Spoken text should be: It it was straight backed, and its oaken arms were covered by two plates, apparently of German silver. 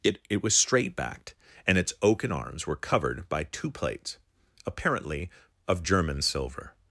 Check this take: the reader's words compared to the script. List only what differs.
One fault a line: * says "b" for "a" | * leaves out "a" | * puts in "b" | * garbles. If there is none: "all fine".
all fine